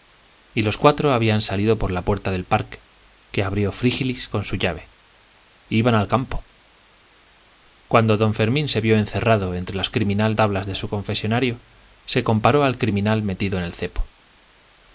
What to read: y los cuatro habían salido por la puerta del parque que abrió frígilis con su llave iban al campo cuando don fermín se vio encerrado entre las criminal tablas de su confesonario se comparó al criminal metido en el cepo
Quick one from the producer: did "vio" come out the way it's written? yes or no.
yes